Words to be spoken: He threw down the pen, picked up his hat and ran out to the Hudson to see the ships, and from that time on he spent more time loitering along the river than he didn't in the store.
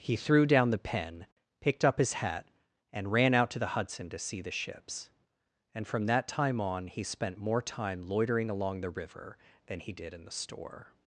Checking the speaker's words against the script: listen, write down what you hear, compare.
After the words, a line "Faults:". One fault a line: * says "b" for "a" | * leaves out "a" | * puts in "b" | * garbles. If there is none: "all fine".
He threw down the pen, picked up his hat and ran out to the Hudson to see the ships, and from that time on he spent more time loitering along the river than he did in the store.
Faults:
* says "did" for "didn't"